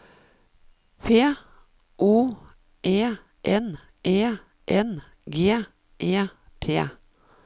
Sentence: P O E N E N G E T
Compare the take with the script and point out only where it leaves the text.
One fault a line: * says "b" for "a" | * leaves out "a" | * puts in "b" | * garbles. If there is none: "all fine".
all fine